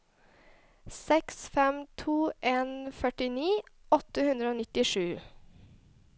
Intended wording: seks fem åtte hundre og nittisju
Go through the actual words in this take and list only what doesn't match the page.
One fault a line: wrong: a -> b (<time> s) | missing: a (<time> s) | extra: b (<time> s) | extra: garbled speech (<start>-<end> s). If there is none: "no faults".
extra: to en førtini (2.0 s)